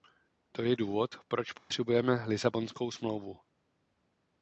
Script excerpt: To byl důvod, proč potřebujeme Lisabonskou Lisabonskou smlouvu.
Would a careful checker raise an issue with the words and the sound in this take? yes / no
yes